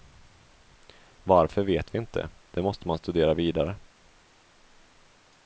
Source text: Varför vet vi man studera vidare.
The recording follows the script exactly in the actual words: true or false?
false